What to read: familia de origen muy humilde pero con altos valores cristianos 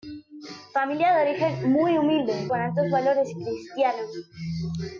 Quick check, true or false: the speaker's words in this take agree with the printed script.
false